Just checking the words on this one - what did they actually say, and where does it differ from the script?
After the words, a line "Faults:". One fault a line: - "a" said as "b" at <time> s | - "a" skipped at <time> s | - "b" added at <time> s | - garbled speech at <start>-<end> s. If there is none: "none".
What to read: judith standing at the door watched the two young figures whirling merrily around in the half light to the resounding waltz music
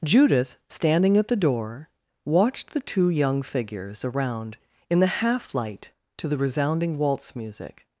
judith standing at the door watched the two young figures around in the half light to the resounding waltz music
Faults:
- "whirling merrily" skipped at 4.0 s